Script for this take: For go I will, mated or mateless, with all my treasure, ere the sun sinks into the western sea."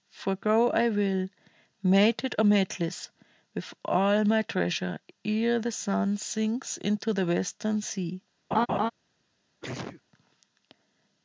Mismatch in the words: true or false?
false